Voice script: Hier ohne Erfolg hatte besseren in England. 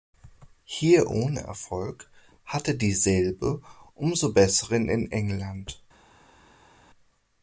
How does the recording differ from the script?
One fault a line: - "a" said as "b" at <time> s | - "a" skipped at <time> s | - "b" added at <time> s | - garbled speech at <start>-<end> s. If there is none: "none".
- "dieselbe umso" added at 2.7 s